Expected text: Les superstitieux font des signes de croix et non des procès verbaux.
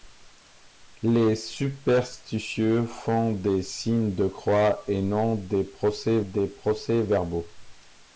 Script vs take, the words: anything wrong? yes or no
yes